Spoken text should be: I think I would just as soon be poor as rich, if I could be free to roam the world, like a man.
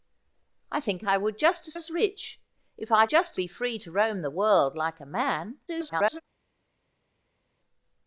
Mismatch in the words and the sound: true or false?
true